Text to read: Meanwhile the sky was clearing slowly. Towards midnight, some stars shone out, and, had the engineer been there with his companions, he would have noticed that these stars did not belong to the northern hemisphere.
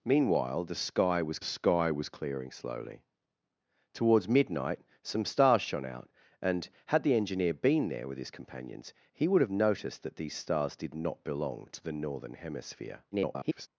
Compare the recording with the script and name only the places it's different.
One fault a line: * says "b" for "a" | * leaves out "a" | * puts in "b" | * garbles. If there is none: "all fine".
* puts in "sky was"
* garbles